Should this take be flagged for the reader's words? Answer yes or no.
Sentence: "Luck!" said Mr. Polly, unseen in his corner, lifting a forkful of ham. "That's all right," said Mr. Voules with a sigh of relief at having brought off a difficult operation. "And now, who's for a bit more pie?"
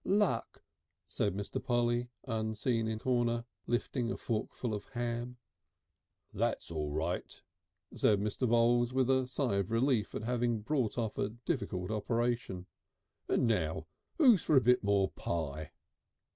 yes